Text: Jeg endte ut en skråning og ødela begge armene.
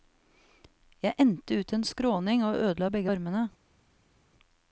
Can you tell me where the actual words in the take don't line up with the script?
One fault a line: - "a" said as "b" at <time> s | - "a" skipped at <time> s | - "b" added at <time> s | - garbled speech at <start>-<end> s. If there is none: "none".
none